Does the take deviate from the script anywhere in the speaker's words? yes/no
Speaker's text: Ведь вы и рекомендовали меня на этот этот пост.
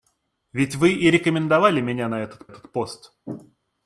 no